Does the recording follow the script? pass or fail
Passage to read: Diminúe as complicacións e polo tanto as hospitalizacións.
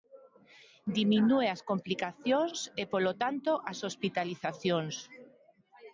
pass